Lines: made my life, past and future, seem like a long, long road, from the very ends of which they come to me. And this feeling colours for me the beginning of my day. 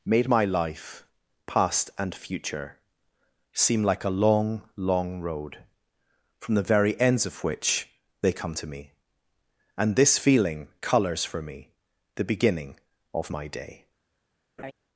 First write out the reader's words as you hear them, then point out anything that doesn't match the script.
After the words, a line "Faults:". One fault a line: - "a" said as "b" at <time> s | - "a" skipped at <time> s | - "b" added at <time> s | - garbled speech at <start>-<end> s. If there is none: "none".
made my life, past and future, seem like a long, long road, from the very ends of which they come to me. And this feeling colours for me the beginning of my day.
Faults:
none